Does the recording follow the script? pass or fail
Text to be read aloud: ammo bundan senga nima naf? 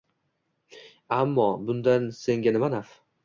pass